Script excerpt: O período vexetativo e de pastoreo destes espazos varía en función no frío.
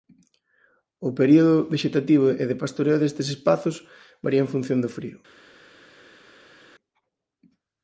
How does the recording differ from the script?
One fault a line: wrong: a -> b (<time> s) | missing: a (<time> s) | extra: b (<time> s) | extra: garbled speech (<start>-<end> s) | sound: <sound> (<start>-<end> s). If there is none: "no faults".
wrong: no -> do (4.8 s)